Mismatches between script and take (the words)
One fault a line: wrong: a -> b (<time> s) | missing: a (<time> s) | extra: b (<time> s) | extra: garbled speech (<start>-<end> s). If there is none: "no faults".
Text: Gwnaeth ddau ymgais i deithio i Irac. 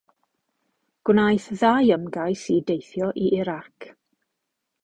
no faults